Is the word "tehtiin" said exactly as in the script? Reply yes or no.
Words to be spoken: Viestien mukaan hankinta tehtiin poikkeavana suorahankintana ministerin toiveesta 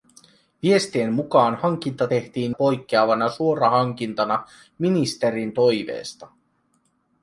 yes